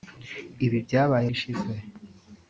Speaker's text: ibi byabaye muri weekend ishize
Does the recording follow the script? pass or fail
fail